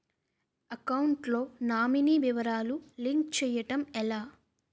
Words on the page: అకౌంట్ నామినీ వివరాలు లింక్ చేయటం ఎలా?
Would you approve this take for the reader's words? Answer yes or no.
no